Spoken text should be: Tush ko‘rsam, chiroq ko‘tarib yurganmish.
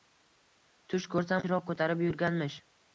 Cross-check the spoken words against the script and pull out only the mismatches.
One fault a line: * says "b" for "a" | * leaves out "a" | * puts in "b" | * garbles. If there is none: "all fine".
all fine